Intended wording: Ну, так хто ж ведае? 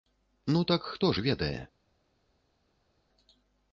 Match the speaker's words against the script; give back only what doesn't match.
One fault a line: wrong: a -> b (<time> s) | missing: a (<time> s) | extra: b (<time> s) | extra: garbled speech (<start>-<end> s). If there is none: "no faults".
no faults